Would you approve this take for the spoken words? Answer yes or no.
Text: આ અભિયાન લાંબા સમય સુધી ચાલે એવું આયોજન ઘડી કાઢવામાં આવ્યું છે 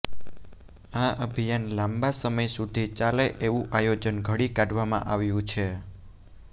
yes